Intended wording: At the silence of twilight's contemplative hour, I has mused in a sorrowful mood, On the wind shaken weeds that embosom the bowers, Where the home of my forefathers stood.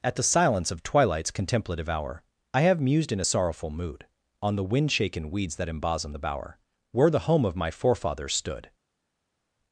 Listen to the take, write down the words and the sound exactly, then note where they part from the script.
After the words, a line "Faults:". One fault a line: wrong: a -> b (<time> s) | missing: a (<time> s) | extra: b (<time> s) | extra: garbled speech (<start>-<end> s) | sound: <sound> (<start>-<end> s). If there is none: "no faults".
At the silence of twilight's contemplative hour, I have mused in a sorrowful mood, On the wind shaken weeds that embosom the bower, Where the home of my forefathers stood.
Faults:
wrong: has -> have (2.6 s)
wrong: bowers -> bower (6.2 s)